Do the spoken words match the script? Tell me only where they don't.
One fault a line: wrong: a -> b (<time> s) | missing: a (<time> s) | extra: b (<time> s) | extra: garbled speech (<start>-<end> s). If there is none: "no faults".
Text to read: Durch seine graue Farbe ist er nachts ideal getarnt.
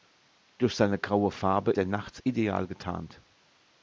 missing: ist (1.7 s)